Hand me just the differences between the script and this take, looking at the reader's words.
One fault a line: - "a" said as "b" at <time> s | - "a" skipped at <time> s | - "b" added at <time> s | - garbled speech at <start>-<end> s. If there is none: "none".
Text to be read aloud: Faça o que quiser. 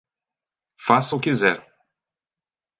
- "que" skipped at 1.2 s